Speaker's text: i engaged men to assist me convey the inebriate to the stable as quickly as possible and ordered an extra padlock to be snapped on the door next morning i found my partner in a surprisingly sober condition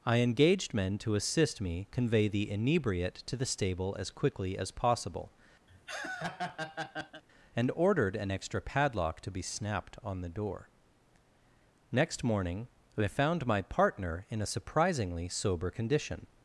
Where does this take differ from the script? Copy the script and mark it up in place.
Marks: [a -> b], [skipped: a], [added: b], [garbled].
i engaged men to assist me convey the inebriate to the stable as quickly as possible and ordered an extra padlock to be snapped on the door next morning i found my partner in a surprisingly sober condition